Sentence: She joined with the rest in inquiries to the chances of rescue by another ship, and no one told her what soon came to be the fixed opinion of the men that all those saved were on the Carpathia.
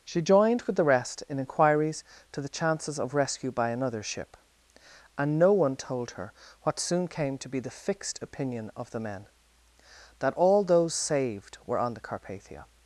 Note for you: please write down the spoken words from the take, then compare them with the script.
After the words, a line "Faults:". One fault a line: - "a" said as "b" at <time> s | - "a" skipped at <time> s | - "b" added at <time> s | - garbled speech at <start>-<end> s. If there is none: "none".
She joined with the rest in inquiries to the chances of rescue by another ship, and no one told her what soon came to be the fixed opinion of the men that all those saved were on the Carpathia.
Faults:
none